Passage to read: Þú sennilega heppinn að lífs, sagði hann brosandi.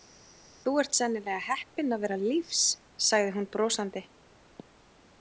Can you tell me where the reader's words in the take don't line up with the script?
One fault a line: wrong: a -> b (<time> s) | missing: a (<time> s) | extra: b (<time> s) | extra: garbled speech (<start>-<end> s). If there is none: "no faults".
extra: ert (0.8 s)
extra: vera (2.0 s)
wrong: hann -> hún (3.4 s)